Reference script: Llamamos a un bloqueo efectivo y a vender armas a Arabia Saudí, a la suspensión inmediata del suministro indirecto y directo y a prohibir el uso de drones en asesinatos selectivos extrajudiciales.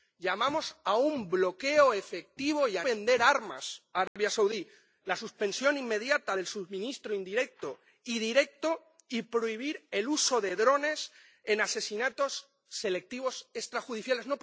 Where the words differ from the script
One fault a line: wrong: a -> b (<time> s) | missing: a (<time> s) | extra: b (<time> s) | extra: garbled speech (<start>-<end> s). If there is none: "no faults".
no faults